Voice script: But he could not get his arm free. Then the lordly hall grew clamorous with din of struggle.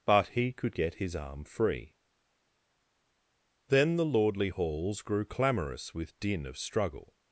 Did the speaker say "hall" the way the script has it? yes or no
no